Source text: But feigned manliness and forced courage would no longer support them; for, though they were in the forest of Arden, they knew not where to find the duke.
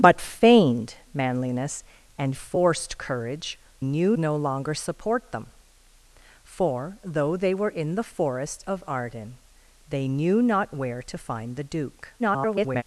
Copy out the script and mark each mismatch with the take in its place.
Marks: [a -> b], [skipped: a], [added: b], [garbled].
But feigned manliness and forced courage [would -> knew] no longer support them; for, though they were in the forest of Arden, they knew not where to find the duke. [garbled]